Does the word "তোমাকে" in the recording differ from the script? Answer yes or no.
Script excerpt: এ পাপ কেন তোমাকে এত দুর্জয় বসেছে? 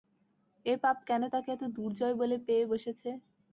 yes